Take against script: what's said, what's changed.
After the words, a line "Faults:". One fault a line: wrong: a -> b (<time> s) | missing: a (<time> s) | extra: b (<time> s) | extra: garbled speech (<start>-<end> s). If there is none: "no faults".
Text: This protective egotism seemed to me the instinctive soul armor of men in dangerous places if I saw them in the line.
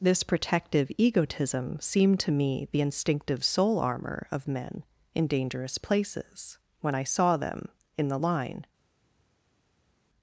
This protective egotism seemed to me the instinctive soul armor of men in dangerous places when I saw them in the line.
Faults:
wrong: if -> when (6.8 s)